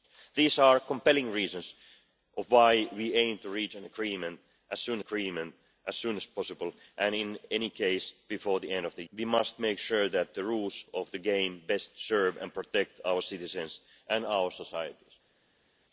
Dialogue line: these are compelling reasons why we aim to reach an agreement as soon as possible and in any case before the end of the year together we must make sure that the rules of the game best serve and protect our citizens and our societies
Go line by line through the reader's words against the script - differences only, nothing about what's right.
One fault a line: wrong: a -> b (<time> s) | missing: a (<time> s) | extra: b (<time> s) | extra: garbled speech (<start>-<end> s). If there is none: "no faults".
extra: agreement (5.0 s)
extra: soon as (6.0 s)
missing: year together (9.0 s)